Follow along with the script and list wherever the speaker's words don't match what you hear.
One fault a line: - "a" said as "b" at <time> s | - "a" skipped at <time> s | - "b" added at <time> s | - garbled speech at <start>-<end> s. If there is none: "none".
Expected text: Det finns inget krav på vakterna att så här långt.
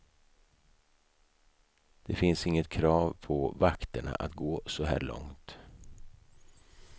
- "gå" added at 4.3 s